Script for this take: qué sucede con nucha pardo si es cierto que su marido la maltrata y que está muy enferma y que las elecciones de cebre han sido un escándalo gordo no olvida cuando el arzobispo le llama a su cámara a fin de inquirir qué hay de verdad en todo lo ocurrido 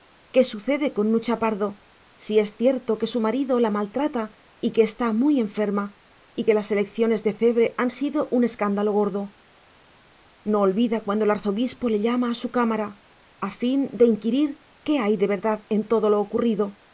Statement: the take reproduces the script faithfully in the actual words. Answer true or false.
true